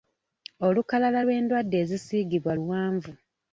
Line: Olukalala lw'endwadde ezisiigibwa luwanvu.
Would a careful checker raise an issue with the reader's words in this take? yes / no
no